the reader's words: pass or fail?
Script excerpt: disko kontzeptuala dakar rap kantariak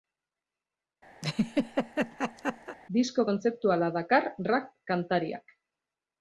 pass